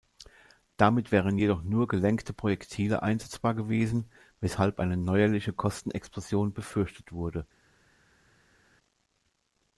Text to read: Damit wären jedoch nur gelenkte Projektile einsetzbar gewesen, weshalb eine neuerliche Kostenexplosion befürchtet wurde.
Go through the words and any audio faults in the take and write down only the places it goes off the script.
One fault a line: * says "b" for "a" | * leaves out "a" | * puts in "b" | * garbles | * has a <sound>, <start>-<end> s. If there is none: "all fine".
all fine